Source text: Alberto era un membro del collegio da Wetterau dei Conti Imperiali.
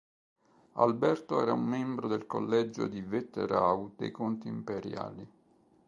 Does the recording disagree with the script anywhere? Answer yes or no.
yes